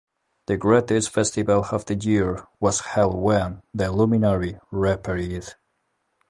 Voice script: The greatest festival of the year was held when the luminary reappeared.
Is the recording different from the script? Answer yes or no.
no